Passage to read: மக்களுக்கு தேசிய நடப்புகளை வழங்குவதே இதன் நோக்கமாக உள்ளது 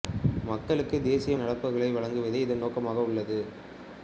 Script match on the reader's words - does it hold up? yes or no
yes